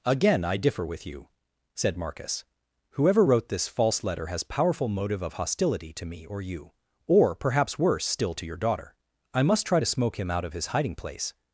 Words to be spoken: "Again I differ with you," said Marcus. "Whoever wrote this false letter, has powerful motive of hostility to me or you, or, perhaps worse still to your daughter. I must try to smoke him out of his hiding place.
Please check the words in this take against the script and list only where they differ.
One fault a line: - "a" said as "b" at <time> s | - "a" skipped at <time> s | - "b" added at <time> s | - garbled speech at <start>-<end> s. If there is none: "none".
none